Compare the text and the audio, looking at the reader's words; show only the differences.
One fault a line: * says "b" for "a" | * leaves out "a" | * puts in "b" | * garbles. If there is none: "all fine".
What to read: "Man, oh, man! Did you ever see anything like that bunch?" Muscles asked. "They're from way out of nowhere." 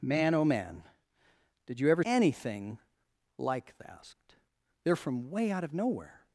* leaves out "see"
* leaves out "that bunch Muscles"